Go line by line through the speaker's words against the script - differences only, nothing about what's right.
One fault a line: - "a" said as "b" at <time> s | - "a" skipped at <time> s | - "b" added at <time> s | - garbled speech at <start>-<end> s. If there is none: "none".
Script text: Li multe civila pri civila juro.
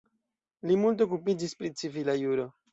- "civila" said as "okupiĝis" at 1.1 s